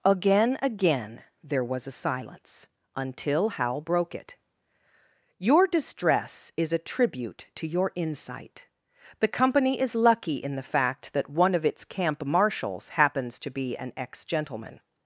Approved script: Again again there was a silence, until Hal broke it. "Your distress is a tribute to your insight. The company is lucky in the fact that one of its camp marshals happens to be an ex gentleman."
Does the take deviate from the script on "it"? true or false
false